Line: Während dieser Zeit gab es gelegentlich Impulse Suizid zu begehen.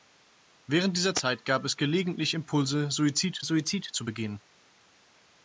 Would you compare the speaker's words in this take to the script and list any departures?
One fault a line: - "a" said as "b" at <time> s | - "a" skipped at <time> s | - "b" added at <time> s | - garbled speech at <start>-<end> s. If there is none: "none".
- "Suizid" added at 3.4 s